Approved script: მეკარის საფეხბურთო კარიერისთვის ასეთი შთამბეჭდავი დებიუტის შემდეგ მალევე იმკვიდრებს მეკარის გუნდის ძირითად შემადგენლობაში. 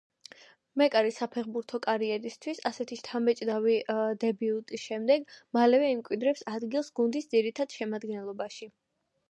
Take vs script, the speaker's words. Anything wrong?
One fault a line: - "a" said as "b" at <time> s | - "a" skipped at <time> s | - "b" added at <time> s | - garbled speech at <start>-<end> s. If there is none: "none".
- "მეკარის" said as "ადგილს" at 6.5 s